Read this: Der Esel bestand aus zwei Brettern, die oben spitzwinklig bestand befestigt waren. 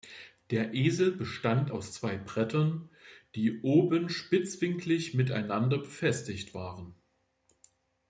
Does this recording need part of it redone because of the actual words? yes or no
yes